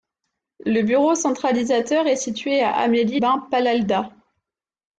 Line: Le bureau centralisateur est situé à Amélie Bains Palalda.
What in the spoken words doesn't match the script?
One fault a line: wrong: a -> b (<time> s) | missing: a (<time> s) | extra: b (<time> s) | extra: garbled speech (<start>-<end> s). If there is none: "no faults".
no faults